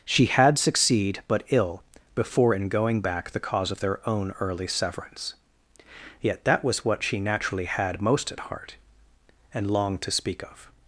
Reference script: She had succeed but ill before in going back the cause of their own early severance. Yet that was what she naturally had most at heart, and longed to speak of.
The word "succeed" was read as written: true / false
true